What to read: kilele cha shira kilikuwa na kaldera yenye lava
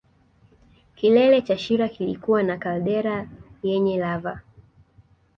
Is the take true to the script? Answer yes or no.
yes